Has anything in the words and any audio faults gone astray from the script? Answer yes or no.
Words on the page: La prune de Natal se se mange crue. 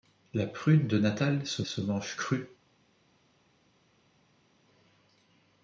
no